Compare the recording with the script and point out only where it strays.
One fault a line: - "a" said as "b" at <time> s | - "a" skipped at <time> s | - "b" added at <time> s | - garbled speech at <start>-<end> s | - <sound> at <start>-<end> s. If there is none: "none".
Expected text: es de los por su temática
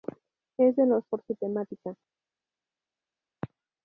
none